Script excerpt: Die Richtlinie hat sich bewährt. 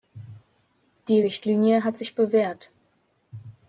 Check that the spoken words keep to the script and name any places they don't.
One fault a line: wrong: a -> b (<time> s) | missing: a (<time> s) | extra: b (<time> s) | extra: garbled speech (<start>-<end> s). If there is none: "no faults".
no faults